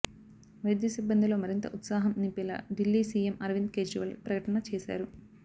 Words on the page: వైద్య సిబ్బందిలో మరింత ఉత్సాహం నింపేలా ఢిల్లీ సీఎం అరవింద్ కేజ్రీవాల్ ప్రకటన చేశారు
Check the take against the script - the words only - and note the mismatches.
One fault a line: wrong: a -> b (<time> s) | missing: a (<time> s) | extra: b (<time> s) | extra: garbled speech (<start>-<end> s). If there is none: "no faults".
no faults